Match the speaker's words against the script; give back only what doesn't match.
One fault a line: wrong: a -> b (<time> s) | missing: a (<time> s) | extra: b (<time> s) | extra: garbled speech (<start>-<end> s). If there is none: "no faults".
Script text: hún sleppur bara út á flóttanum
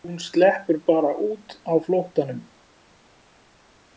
no faults